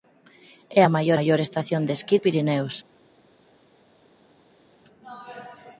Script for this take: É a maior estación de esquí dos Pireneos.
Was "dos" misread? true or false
true